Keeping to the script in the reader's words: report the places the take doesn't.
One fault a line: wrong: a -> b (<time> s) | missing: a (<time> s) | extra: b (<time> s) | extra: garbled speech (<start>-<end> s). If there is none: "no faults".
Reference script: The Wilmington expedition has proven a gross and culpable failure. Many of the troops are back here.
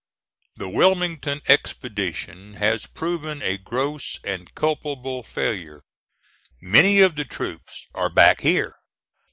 no faults